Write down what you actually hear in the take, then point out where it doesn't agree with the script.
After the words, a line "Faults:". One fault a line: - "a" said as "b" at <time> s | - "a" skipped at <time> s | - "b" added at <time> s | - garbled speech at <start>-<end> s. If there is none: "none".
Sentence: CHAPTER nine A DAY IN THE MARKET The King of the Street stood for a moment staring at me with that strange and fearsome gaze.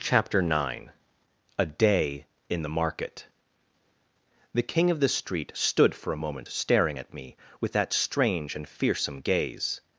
CHAPTER nine A DAY IN THE MARKET The King of the Street stood for a moment staring at me with that strange and fearsome gaze.
Faults:
none